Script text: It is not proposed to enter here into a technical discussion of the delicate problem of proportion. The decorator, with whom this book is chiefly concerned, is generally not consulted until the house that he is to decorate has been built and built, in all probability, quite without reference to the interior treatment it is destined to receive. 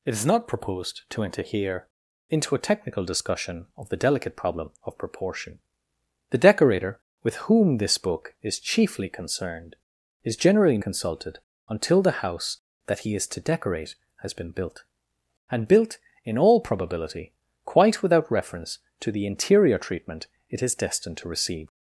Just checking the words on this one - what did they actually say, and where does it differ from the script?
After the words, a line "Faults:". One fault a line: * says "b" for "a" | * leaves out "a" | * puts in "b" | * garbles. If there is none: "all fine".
It is not proposed to enter here into a technical discussion of the delicate problem of proportion. The decorator, with whom this book is chiefly concerned, is generally consulted until the house that he is to decorate has been built and built, in all probability, quite without reference to the interior treatment it is destined to receive.
Faults:
* leaves out "not"